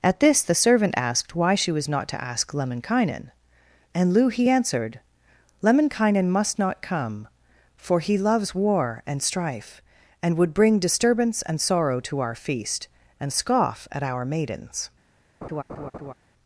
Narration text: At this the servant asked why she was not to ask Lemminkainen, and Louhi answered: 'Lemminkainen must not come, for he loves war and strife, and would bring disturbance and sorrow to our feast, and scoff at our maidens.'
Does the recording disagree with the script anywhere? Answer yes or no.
no